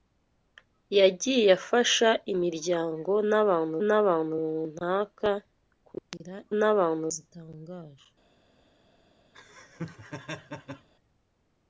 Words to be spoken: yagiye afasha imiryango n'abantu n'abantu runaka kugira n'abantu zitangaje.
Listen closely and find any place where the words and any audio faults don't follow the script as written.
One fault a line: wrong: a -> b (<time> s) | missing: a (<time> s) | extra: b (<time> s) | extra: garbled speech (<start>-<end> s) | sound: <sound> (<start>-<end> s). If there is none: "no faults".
sound: laugh (9.3-10.9 s)